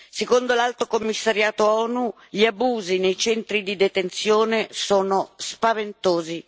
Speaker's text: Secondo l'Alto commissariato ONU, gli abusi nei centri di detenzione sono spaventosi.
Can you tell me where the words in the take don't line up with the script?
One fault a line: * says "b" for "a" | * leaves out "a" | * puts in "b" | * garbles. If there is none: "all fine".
all fine